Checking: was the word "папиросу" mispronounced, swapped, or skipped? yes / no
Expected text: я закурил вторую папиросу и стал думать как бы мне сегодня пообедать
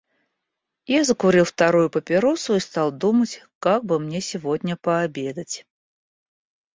no